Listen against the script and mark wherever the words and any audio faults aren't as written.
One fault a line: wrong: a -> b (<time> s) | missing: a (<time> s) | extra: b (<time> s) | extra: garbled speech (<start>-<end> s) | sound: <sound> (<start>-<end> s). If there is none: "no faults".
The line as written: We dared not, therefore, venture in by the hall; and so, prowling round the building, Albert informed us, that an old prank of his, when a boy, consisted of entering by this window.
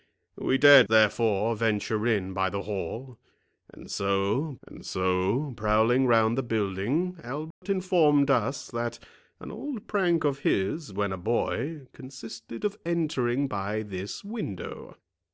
missing: not (0.9 s)
extra: and so (4.7 s)
sound: dropout (7.5-7.6 s)